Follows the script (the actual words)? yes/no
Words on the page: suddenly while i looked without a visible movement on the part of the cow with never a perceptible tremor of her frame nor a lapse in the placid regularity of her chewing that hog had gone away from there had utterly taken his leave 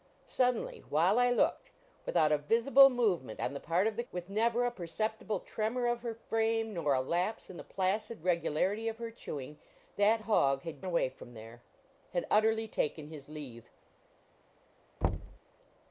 no